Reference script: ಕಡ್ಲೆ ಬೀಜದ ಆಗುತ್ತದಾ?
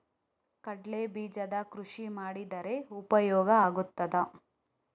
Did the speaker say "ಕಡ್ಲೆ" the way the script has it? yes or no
yes